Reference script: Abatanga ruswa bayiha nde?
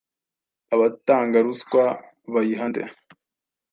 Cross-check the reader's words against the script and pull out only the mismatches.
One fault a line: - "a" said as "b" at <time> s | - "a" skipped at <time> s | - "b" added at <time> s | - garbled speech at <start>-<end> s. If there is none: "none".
none